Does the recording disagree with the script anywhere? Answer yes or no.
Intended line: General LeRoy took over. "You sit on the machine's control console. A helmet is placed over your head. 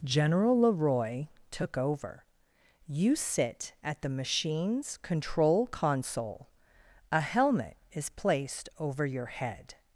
yes